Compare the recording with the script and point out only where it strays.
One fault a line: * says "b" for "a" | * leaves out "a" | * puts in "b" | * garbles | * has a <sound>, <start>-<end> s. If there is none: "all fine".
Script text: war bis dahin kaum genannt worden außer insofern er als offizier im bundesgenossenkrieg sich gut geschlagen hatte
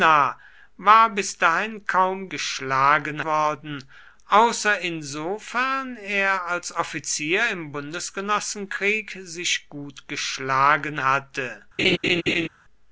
* says "geschlagen" for "genannt"
* has a laugh, 11.8-12.5 s